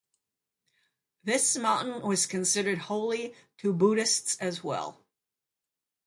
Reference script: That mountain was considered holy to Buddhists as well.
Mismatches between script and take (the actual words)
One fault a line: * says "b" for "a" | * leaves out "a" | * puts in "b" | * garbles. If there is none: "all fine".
* says "This" for "That"